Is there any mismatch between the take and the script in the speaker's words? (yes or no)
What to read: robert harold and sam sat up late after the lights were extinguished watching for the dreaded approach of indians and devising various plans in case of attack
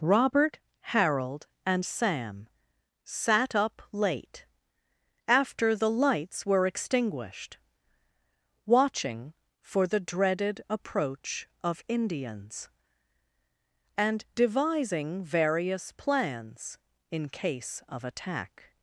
no